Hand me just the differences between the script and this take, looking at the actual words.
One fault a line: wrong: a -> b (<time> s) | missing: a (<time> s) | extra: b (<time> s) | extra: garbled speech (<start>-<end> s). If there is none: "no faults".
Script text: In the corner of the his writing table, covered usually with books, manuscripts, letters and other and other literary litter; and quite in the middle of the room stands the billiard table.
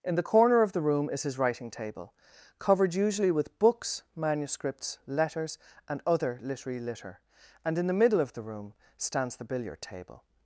extra: room is (0.8 s)
missing: and other (6.4 s)
missing: quite (7.8 s)